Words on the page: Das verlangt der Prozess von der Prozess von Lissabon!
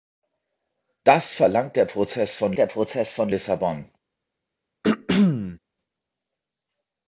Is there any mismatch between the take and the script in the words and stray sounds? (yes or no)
yes